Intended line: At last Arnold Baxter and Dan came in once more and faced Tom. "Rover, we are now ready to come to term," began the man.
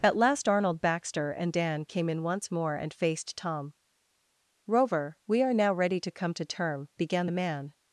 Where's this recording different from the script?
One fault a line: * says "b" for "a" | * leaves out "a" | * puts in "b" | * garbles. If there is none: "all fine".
all fine